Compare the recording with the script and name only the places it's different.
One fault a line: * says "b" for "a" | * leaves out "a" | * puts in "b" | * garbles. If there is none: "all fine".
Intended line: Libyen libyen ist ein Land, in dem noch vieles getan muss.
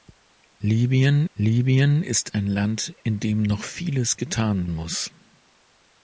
all fine